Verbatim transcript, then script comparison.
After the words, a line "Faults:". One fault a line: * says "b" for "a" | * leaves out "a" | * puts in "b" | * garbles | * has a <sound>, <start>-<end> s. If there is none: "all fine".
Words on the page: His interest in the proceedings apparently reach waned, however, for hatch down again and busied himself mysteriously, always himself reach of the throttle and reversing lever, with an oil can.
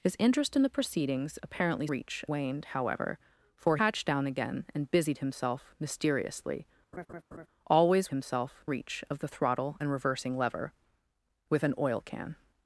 His interest in the proceedings apparently reach waned, however, for hatch down again and busied himself mysteriously, always himself reach of the throttle and reversing lever, with an oil can.
Faults:
* has a laugh, 6.9-7.5 s